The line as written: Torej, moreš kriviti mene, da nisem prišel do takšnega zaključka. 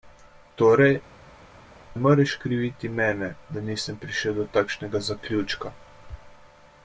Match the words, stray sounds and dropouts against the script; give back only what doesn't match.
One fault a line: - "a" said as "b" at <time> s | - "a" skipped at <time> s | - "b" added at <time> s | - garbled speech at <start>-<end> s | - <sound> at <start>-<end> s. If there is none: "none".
none